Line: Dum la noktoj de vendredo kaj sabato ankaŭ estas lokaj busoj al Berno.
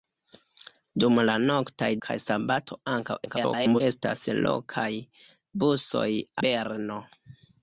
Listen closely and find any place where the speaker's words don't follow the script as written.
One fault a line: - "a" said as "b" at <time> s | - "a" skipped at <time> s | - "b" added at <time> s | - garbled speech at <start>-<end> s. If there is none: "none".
- "de vendredo" skipped at 1.9 s
- garbled speech at 3.2-3.8 s
- "al" skipped at 6.1 s